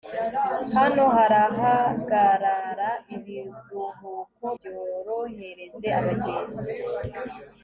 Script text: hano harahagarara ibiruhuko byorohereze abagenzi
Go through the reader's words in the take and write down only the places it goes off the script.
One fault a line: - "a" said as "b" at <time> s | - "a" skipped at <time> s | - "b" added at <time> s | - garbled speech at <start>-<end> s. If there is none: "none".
none